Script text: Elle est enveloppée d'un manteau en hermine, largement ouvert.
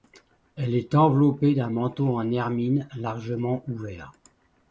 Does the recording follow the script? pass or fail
pass